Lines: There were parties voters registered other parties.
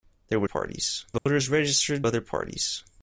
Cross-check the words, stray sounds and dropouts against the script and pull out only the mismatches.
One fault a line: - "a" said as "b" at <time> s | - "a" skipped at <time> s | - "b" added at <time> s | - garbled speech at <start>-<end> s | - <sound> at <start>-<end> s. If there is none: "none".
- dropout at 1.2-1.3 s